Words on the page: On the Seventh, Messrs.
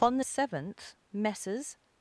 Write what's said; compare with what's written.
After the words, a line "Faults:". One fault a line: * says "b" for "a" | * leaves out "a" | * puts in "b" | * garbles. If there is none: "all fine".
On the Seventh, Messrs.
Faults:
all fine